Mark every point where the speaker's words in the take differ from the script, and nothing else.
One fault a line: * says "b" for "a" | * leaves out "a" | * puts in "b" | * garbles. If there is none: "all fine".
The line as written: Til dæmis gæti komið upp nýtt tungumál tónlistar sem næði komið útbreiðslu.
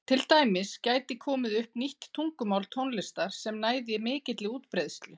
* says "mikilli" for "komið"